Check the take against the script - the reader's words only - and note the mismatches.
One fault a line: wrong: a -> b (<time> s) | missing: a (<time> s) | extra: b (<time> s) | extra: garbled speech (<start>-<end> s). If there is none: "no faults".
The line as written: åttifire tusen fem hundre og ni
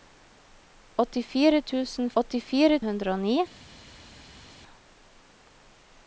wrong: fem -> åttifire (2.2 s)